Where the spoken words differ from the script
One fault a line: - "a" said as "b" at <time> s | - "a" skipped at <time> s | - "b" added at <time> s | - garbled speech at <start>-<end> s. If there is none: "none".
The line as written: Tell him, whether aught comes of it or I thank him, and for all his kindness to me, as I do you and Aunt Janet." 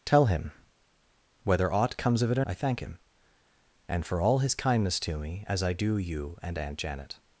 none